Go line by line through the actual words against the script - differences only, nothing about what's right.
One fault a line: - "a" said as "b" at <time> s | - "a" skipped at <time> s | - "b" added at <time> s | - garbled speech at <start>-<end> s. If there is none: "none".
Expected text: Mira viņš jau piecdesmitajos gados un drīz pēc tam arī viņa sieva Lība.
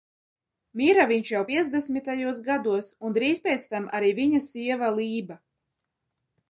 none